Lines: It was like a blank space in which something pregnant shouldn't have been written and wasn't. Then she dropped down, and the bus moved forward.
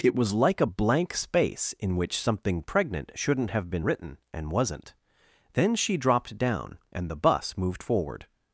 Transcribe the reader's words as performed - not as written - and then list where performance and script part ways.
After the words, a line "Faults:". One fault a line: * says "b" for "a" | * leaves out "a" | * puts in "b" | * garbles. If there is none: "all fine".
It was like a blank space in which something pregnant shouldn't have been written and wasn't. Then she dropped down, and the bus moved forward.
Faults:
all fine